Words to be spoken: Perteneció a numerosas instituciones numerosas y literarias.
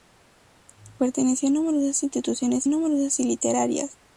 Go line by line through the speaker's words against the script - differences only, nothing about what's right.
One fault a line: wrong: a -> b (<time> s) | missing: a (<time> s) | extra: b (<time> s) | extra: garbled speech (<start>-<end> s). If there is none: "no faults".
no faults